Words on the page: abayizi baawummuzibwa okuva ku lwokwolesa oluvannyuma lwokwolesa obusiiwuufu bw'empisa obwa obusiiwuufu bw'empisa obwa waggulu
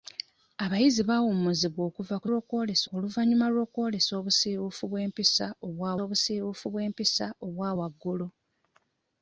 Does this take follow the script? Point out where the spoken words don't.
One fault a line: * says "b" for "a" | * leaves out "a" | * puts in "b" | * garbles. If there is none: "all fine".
all fine